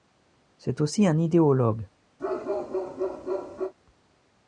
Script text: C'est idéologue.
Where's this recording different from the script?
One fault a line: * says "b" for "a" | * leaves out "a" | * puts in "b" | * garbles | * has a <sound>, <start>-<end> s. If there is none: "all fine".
* puts in "aussi un"
* has a bark, 2.2-3.7 s